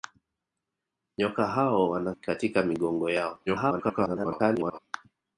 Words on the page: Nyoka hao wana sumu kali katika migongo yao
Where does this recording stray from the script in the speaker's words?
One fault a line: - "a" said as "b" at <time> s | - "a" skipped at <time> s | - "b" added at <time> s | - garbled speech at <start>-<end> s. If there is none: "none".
- "sumu kali" skipped at 2.1 s
- garbled speech at 3.5-4.8 s